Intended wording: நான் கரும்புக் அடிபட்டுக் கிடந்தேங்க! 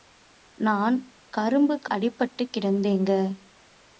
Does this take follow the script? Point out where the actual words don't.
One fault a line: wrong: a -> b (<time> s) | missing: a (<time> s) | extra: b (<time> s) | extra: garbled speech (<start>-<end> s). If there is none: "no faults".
no faults